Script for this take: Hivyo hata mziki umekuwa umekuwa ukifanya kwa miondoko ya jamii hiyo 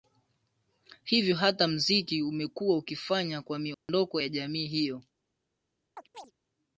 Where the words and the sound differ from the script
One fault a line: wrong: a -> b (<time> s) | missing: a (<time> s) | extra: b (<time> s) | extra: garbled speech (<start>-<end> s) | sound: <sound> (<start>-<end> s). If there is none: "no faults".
missing: umekuwa (2.8 s)
sound: dropout (3.7-3.9 s)
sound: chirp (6.0-6.3 s)